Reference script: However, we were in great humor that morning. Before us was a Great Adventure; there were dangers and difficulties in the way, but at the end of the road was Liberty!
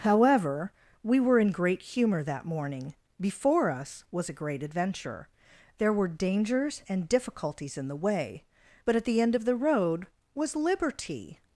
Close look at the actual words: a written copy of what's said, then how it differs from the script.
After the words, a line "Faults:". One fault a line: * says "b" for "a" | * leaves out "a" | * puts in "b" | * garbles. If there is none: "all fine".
However, we were in great humor that morning. Before us was a Great Adventure; there were dangers and difficulties in the way, but at the end of the road was Liberty!
Faults:
all fine